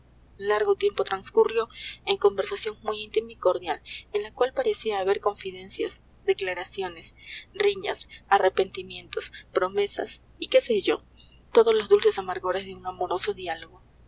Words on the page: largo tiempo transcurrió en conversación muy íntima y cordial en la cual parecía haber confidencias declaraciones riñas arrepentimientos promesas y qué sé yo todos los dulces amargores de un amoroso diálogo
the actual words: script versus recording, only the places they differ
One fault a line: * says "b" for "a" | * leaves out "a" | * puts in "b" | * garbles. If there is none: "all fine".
all fine